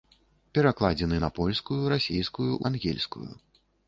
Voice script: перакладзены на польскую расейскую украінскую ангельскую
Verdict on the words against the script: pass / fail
fail